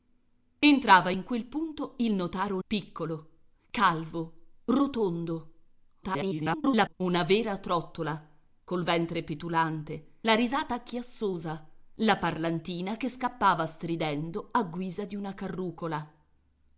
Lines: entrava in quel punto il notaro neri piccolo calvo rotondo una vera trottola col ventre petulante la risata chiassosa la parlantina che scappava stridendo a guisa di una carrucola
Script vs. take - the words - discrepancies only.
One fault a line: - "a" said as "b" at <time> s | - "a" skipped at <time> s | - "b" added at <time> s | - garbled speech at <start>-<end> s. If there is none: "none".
- "neri" skipped at 2.6 s
- garbled speech at 6.0-6.9 s